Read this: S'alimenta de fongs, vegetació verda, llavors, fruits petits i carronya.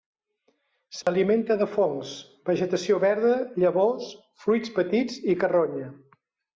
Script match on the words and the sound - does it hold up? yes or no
no